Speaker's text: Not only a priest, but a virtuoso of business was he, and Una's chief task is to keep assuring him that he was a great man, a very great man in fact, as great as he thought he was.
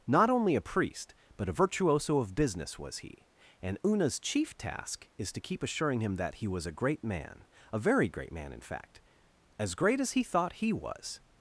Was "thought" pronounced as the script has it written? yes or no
yes